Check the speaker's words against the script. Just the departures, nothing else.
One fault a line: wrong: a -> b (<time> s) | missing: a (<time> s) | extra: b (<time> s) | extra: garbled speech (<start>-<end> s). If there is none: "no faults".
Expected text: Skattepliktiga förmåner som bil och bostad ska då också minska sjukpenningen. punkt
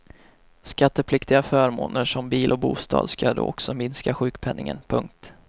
no faults